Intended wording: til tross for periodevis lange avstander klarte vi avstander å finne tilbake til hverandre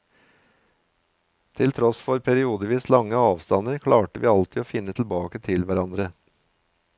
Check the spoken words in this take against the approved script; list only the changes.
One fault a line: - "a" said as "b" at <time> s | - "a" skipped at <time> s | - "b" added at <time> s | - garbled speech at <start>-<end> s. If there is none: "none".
- "avstander" said as "alltid" at 4.3 s